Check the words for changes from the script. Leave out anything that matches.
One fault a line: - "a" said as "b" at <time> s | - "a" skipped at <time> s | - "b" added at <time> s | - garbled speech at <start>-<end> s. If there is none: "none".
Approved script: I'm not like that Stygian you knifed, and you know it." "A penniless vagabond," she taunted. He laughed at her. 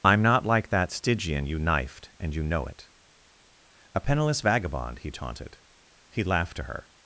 - "she" said as "he" at 5.0 s
- "at" said as "to" at 6.6 s